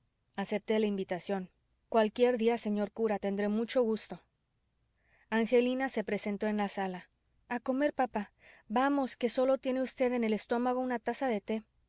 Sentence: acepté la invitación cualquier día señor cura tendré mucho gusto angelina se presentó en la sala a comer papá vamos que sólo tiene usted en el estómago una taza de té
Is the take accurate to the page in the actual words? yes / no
yes